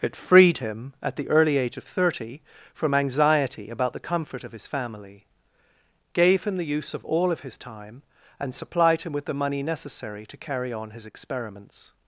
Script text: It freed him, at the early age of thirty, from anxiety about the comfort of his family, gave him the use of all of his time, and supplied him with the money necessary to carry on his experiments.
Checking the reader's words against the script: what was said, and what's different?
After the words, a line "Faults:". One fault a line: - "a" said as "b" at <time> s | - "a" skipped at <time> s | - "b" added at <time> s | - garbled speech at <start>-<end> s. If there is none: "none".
It freed him, at the early age of thirty, from anxiety about the comfort of his family, gave him the use of all of his time, and supplied him with the money necessary to carry on his experiments.
Faults:
none